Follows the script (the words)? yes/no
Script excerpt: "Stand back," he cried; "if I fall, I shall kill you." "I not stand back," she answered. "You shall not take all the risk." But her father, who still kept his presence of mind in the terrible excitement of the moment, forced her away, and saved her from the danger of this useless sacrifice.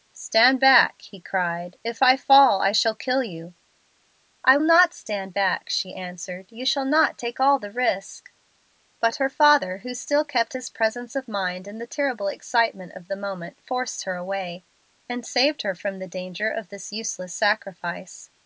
yes